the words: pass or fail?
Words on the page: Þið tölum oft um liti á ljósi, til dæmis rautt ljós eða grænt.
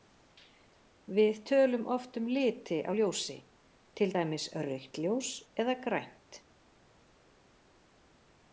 fail